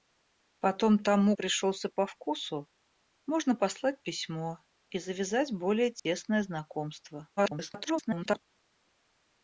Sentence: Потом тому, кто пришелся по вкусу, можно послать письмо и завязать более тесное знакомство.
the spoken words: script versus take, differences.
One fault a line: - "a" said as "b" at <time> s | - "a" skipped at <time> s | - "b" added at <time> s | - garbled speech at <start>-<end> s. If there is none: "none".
- "кто" skipped at 1.4 s
- garbled speech at 7.4-8.4 s